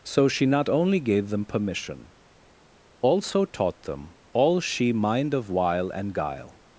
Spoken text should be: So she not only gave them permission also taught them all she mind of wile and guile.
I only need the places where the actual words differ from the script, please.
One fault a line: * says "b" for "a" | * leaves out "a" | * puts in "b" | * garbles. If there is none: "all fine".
all fine